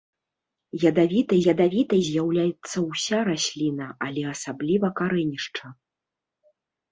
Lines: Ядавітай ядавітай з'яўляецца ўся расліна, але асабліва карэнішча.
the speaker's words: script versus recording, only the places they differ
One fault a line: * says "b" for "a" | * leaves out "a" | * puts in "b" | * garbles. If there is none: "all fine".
all fine